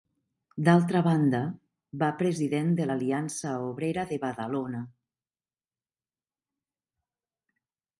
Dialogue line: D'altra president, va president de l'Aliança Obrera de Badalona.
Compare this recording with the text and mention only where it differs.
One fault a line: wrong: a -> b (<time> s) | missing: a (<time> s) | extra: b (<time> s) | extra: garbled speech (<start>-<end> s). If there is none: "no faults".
wrong: president -> banda (1.1 s)